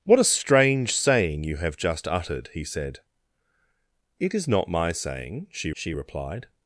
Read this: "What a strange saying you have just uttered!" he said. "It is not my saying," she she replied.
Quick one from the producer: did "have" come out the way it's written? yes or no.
yes